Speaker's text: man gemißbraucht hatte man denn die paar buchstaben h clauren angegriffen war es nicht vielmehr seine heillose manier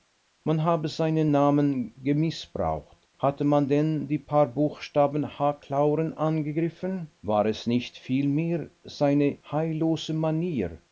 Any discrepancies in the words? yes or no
yes